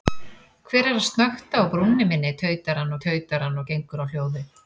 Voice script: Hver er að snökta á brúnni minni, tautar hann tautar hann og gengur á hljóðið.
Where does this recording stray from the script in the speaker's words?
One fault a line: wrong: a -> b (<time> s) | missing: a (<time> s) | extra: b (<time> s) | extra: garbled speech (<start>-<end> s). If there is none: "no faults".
no faults